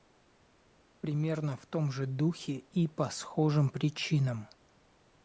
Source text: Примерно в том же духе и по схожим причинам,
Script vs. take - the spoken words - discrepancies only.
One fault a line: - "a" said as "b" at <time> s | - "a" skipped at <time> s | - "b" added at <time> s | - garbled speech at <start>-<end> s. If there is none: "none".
none